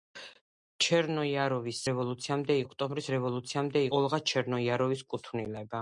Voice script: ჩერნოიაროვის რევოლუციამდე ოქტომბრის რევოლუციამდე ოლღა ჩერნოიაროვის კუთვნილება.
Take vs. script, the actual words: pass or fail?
pass